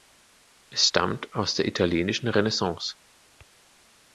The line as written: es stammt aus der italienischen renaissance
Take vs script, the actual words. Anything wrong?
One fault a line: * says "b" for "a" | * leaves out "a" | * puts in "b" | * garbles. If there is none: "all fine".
all fine